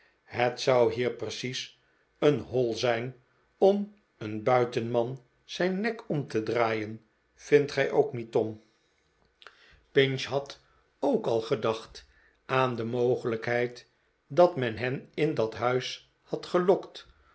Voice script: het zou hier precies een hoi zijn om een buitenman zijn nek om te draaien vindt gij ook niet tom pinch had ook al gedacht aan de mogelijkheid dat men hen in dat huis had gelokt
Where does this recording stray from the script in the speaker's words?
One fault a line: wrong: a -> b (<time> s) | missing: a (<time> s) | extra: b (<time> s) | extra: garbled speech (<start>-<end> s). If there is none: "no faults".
no faults